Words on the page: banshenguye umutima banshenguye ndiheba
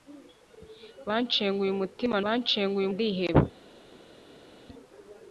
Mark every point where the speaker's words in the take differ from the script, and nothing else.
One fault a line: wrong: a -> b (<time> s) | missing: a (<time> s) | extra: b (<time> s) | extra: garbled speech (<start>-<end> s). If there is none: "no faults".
no faults